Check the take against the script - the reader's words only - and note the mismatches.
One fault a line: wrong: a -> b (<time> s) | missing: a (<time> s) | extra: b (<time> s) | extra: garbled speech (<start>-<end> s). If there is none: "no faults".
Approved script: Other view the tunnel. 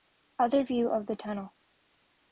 extra: of (0.9 s)